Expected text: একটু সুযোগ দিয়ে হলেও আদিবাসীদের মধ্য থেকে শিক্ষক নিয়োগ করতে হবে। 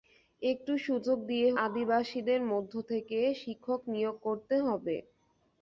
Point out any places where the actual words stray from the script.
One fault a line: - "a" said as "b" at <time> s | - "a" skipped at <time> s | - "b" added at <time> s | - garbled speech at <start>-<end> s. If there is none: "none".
- "হলেও" skipped at 1.5 s